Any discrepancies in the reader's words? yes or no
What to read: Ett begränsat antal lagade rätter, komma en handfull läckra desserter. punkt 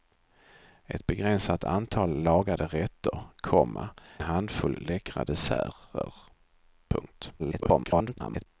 yes